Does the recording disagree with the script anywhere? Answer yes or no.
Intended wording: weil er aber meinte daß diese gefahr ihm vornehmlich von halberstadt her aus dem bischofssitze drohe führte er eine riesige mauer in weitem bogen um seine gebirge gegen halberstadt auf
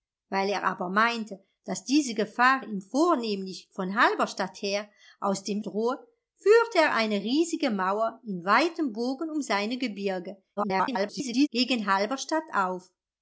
yes